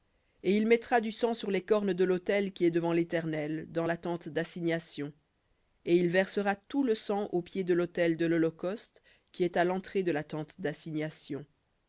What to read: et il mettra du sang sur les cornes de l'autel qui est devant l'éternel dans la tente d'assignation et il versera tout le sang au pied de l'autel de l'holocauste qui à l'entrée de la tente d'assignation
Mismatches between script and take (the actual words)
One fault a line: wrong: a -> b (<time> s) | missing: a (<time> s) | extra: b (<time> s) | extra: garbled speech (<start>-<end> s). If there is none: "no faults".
extra: est (9.4 s)